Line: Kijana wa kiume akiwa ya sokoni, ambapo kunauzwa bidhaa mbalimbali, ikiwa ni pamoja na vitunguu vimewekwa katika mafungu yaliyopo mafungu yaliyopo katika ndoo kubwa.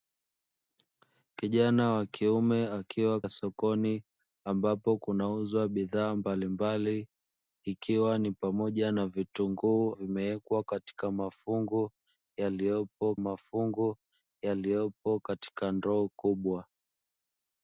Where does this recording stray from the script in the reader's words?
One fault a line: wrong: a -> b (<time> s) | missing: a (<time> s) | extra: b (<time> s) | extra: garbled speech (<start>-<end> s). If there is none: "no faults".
no faults